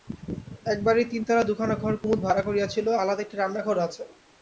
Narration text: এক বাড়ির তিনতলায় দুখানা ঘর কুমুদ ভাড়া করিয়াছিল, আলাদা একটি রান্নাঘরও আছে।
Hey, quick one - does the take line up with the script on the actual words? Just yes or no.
yes